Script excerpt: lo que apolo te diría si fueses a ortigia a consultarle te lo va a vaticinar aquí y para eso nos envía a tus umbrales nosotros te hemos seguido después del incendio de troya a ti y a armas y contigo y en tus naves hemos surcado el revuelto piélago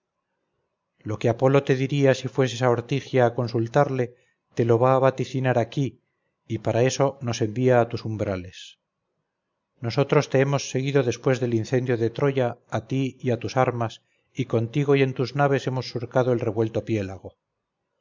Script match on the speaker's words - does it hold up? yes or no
no